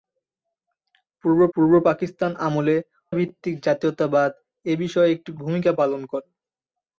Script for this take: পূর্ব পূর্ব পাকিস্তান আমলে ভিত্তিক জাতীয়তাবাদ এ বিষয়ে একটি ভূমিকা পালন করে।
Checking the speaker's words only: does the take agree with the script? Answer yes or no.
yes